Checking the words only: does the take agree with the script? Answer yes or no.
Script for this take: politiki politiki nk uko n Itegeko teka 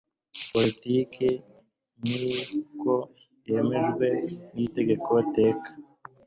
no